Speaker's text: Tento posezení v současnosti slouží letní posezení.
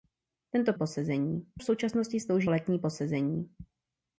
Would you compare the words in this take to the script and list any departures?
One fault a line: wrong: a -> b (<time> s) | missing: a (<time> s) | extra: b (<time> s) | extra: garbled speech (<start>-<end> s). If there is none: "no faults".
no faults